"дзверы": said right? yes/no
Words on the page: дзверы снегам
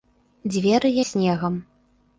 yes